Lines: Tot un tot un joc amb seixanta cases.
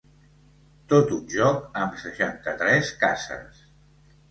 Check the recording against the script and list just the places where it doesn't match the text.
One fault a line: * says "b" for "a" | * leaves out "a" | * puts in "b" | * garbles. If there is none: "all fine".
* leaves out "tot un"
* puts in "tres"